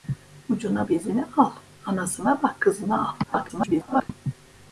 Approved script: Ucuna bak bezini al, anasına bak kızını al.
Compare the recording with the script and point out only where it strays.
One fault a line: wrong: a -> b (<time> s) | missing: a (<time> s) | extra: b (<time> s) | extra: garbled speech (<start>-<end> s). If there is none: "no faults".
missing: bak (0.9 s)
extra: garbled speech (3.2-4.1 s)